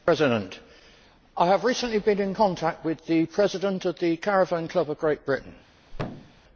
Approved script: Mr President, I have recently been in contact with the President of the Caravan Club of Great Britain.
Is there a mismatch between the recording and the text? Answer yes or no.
no